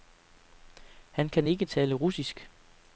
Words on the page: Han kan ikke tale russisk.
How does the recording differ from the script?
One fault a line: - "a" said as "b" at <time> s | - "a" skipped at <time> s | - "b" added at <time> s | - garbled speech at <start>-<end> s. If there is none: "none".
none